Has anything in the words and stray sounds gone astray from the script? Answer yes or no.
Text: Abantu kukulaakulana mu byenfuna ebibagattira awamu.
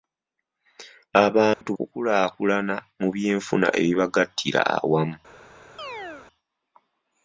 yes